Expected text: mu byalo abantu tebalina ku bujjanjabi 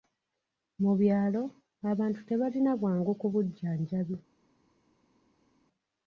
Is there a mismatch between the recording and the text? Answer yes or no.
yes